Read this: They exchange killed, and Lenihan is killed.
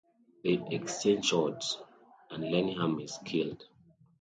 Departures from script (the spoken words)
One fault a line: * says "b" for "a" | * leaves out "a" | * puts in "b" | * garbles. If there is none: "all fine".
* says "shots" for "killed"